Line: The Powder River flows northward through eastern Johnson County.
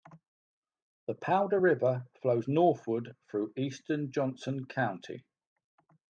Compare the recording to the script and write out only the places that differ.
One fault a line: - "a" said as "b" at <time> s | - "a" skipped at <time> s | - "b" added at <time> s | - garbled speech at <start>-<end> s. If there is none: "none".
none